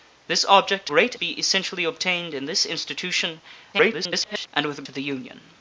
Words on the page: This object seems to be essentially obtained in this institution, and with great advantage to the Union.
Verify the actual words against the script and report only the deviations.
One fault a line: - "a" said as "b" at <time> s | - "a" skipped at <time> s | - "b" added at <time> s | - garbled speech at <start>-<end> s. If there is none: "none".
- "seems" said as "great" at 0.9 s
- garbled speech at 3.7-4.5 s
- "great advantage" skipped at 4.8 s